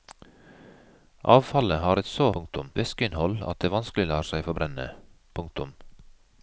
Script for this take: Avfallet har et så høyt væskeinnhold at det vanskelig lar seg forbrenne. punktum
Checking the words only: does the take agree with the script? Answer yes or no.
no